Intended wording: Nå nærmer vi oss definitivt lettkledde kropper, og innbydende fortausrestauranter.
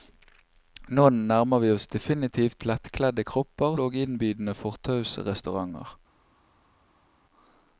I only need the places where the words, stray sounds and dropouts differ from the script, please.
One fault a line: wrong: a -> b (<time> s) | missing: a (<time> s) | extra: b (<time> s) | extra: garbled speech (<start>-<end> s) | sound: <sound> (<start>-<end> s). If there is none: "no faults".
no faults